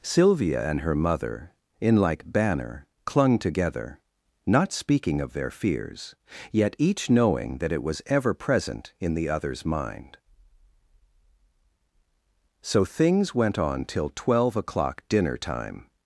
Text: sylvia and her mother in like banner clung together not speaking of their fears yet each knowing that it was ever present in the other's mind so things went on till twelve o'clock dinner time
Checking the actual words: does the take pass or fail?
pass